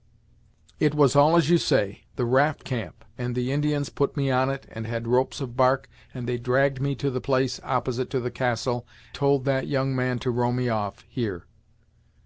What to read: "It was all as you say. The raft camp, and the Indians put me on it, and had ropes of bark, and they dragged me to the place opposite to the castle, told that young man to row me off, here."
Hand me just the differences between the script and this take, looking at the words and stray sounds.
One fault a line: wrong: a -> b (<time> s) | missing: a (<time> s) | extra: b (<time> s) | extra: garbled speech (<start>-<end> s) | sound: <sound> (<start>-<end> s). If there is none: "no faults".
no faults